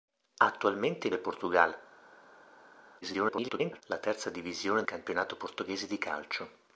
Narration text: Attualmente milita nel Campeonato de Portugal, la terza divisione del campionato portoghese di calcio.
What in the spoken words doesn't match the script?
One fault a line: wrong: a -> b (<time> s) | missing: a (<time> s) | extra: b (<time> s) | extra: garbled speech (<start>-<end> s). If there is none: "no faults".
missing: milita nel Campeonato (1.1 s)
extra: garbled speech (3.0-3.8 s)
missing: del (4.8 s)